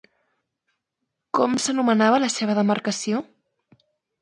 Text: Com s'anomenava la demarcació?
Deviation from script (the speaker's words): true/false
true